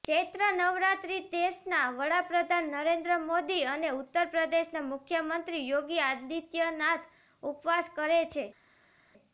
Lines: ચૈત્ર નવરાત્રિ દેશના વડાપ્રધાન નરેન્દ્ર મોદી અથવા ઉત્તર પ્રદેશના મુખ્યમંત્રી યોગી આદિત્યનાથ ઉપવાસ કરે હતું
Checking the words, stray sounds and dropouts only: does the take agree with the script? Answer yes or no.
no